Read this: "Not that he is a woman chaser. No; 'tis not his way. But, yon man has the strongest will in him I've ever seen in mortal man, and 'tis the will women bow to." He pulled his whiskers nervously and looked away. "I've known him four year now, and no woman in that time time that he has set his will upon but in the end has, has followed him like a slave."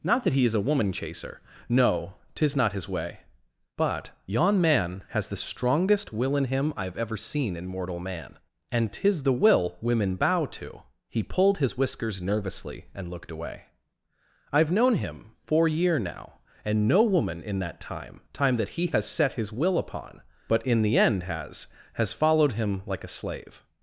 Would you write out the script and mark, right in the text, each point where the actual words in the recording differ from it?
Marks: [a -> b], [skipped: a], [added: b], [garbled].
"Not that he is a woman chaser. No; 'tis not his way. But, yon man has the strongest will in him I've ever seen in mortal man, and 'tis the will women bow to." He pulled his whiskers nervously and looked away. "I've known him four year now, and no woman in that time time that he has set his will upon but in the end has, has followed him like a slave."